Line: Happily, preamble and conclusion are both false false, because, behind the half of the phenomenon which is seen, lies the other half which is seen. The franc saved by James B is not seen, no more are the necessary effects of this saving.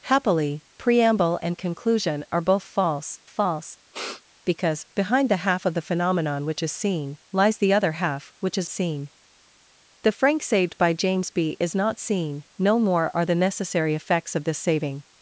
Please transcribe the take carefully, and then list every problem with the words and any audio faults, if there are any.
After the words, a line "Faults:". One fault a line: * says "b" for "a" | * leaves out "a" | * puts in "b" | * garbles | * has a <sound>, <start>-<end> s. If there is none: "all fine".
Happily, preamble and conclusion are both false false, because, behind the half of the phenomenon which is seen, lies the other half which is seen. The franc saved by James B is not seen, no more are the necessary effects of this saving.
Faults:
* has a sniff, 3.9-4.2 s